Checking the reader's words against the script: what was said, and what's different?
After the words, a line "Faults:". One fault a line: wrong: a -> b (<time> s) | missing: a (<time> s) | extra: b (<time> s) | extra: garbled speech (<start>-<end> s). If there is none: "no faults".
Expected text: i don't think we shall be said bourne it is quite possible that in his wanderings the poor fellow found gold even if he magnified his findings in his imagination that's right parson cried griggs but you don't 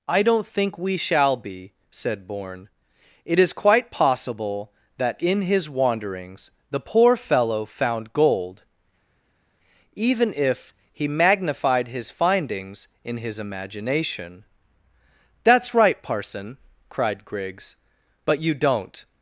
i don't think we shall be said bourne it is quite possible that in his wanderings the poor fellow found gold even if he magnified his findings in his imagination that's right parson cried griggs but you don't
Faults:
no faults